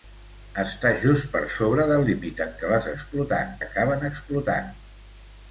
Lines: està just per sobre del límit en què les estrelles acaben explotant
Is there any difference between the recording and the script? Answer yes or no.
yes